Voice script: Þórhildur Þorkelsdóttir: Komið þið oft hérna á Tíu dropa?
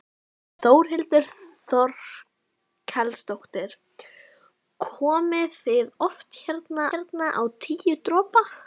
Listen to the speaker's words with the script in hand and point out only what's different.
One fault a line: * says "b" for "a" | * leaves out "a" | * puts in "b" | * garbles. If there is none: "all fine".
* puts in "hérna"